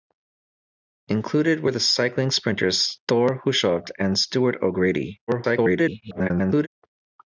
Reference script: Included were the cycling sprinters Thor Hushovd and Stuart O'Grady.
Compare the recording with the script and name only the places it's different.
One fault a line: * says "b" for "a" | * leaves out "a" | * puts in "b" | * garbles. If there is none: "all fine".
* garbles